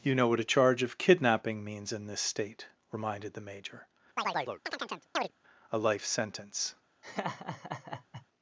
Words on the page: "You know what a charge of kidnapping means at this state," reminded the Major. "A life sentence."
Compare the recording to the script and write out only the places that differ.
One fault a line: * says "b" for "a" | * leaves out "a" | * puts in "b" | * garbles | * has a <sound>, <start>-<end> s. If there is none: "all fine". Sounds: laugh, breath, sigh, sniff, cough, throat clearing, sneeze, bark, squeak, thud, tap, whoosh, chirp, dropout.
* says "in" for "at"
* has a chirp, 4.2-5.3 s
* has a laugh, 7.0-8.3 s